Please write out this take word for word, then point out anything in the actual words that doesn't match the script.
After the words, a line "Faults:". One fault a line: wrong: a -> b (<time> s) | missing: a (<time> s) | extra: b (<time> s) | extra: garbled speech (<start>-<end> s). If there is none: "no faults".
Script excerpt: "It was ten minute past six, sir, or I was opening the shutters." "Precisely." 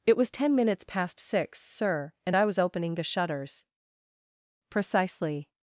"It was ten minutes past six, sir, and I was opening the shutters." "Precisely."
Faults:
wrong: minute -> minutes (0.6 s)
wrong: or -> and (2.2 s)